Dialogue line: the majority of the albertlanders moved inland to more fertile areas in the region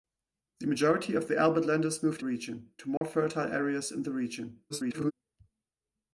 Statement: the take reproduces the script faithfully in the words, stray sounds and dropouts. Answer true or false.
false